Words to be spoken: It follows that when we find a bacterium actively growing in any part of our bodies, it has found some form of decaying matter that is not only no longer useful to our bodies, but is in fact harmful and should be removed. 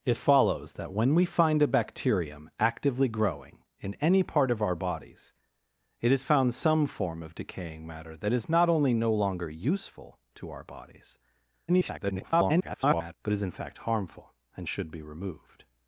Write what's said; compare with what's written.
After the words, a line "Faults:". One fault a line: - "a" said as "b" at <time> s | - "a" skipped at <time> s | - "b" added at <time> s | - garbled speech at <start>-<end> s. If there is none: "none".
It follows that when we find a bacterium actively growing in any part of our bodies, it has found some form of decaying matter that is not only no longer useful to our bodies, [garbled] but is in fact harmful and should be removed.
Faults:
- garbled speech at 11.7-13.1 s